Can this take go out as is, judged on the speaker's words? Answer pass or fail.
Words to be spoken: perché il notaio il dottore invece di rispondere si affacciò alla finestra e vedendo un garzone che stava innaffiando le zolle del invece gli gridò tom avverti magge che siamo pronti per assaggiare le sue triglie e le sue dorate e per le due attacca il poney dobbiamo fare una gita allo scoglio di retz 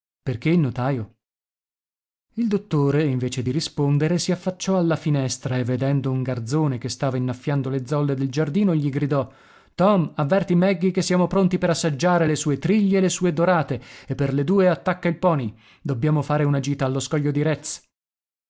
fail